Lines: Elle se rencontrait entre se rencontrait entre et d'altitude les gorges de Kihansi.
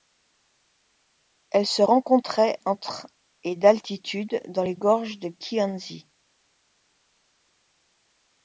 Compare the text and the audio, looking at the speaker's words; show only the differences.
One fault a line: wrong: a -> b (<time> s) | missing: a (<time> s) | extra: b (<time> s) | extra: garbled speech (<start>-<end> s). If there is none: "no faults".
missing: se rencontrait entre (3.1 s)
extra: dans (4.5 s)